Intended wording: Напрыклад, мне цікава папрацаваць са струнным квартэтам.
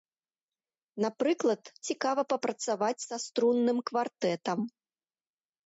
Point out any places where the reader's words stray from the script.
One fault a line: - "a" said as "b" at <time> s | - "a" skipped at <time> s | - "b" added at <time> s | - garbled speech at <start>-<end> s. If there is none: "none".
- "мне" skipped at 1.6 s